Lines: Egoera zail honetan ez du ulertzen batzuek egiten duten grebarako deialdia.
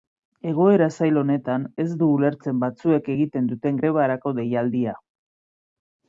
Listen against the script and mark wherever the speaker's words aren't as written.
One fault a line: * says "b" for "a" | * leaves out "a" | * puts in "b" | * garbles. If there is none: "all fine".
all fine